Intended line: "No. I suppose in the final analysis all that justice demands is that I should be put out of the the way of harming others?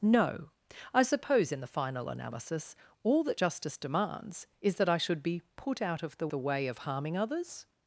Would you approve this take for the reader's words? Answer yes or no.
yes